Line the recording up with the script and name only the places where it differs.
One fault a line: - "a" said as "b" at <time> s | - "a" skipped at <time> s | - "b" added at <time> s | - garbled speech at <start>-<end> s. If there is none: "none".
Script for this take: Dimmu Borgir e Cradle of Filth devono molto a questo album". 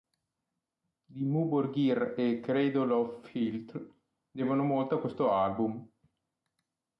none